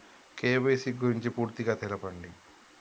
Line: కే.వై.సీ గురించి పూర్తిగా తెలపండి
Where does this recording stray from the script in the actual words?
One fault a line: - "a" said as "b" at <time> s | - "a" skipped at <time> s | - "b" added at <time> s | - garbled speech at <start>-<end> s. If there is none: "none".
none